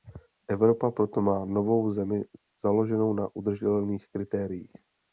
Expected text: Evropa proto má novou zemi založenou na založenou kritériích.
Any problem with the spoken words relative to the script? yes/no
yes